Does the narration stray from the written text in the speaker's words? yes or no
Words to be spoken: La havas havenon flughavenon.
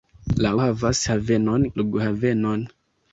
no